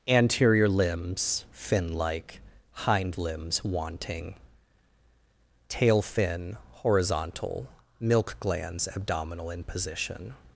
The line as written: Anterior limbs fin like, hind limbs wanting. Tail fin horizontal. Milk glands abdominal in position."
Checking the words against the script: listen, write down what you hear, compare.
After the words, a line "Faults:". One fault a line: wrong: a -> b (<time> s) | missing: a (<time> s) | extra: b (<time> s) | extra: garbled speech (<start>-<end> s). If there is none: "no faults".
Anterior limbs fin like, hind limbs wanting. Tail fin horizontal. Milk glands abdominal in position."
Faults:
no faults